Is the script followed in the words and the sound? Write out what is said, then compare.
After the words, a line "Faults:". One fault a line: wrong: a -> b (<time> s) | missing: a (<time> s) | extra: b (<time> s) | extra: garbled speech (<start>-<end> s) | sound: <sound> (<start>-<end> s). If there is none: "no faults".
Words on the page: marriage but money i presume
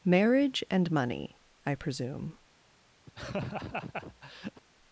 marriage and money i presume
Faults:
wrong: but -> and (0.7 s)
sound: laugh (3.1-4.6 s)